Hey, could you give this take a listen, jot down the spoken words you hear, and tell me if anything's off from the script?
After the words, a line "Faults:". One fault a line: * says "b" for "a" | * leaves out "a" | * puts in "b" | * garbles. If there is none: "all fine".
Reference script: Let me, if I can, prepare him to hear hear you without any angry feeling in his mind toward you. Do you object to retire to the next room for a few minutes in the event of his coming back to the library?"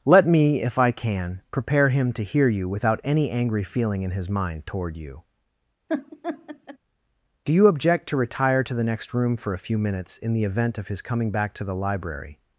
Let me, if I can, prepare him to hear you without any angry feeling in his mind toward you. Do you object to retire to the next room for a few minutes in the event of his coming back to the library?"
Faults:
* leaves out "hear"